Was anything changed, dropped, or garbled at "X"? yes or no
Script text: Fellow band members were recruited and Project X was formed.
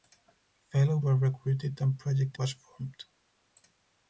yes